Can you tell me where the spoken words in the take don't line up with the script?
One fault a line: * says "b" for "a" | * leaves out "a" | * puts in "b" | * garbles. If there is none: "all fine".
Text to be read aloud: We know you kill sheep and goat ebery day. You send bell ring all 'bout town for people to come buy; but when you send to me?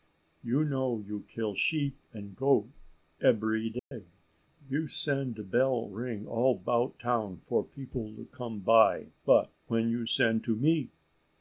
* says "You" for "We"